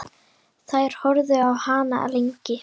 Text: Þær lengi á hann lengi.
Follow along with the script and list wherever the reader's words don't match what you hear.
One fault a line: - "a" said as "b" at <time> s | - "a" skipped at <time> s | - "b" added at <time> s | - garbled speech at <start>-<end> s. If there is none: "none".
- "lengi" said as "horfðu" at 1.0 s